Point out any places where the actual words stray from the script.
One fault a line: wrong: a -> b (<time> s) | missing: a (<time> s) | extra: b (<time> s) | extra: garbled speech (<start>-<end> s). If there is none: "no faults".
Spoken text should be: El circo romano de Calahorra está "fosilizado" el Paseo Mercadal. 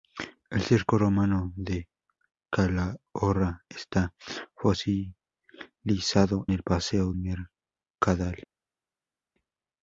no faults